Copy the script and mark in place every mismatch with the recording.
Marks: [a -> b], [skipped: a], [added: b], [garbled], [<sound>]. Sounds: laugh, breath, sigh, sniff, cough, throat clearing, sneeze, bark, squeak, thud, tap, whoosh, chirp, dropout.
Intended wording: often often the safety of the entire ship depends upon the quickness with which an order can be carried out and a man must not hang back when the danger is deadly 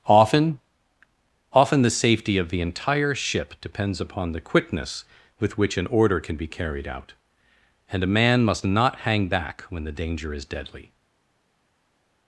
often often the safety of the entire ship depends upon the quickness with which an order can be carried out and a man must not hang back when the danger is deadly